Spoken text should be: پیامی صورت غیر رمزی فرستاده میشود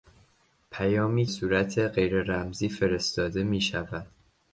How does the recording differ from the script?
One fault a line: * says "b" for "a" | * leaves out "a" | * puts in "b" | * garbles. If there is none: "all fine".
all fine